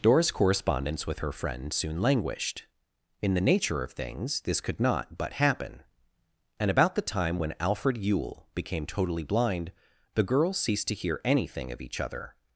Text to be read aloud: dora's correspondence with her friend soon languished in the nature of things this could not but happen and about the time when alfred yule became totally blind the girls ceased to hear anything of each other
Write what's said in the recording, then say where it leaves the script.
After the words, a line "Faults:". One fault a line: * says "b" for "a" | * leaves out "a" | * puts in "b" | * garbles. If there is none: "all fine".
dora's correspondence with her friend soon languished in the nature of things this could not but happen and about the time when alfred yule became totally blind the girls ceased to hear anything of each other
Faults:
all fine